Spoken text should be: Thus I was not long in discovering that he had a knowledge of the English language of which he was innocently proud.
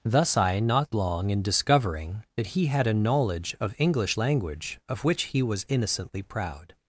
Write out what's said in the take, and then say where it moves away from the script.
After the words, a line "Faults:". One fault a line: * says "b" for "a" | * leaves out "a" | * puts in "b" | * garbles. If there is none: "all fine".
Thus I not long in discovering that he had a knowledge of English language of which he was innocently proud.
Faults:
* leaves out "was"
* leaves out "the"